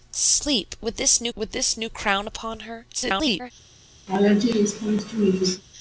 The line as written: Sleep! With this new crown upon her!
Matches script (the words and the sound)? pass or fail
fail